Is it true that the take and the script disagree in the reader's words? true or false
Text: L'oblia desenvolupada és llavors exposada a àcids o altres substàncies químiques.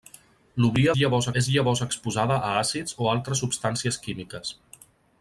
true